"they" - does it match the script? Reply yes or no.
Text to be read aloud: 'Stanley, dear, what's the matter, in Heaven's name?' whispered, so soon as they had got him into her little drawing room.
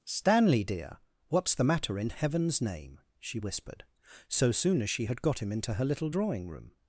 no